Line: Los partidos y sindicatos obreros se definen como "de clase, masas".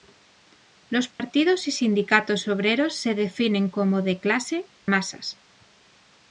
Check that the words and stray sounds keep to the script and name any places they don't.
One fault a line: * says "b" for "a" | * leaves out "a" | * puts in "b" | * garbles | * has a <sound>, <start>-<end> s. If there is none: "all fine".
* has a dropout, 1.1-1.2 s